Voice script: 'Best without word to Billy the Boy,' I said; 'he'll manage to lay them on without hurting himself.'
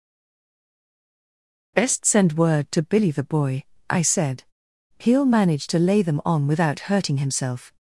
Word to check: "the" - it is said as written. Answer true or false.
true